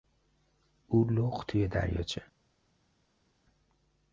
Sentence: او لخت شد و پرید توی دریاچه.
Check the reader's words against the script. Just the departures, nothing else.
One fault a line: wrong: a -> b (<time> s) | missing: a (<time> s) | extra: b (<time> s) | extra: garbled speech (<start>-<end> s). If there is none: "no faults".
missing: شد و پرید (1.5 s)